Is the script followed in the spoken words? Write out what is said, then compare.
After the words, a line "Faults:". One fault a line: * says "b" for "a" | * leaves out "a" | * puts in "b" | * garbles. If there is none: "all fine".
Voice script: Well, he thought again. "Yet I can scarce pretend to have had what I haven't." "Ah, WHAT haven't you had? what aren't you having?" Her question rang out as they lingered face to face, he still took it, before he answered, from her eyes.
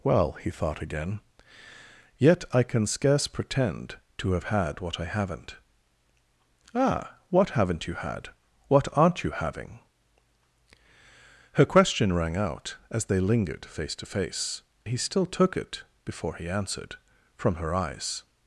Well, he thought again. "Yet I can scarce pretend to have had what I haven't." "Ah, WHAT haven't you had? what aren't you having?" Her question rang out as they lingered face to face, he still took it, before he answered, from her eyes.
Faults:
all fine